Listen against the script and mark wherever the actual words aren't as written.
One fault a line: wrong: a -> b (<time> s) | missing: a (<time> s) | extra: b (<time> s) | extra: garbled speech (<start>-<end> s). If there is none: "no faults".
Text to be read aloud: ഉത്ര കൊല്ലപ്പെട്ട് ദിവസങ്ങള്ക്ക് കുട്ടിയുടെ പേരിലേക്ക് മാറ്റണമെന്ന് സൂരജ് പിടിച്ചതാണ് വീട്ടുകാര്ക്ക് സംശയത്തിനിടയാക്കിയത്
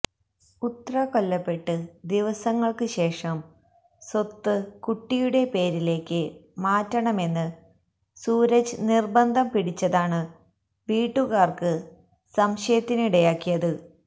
extra: ശേഷം സ്വത്ത് (2.9 s)
extra: നിര്ബന്ധം (8.9 s)